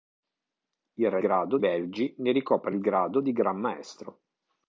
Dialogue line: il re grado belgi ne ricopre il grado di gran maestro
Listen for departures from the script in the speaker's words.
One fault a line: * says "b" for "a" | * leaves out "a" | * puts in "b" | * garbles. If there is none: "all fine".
all fine